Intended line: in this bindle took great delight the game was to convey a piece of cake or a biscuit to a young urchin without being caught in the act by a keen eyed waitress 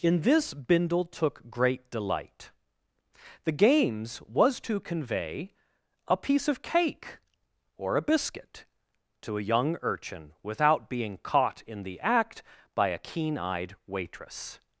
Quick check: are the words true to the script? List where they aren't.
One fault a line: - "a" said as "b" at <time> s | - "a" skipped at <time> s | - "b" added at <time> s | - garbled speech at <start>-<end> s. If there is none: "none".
- "game" said as "games" at 3.5 s